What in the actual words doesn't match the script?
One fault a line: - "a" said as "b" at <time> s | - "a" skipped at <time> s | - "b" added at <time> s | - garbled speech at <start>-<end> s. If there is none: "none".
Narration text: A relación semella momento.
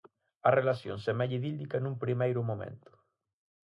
- "idílica nun primeiro" added at 1.4 s